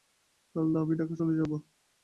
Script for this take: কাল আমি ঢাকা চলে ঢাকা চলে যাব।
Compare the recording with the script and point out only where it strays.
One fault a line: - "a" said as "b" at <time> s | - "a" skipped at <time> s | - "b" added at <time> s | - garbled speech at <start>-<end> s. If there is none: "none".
- "ঢাকা চলে" skipped at 1.3 s